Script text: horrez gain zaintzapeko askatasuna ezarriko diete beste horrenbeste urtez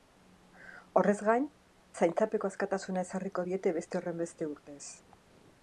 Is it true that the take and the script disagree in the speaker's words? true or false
false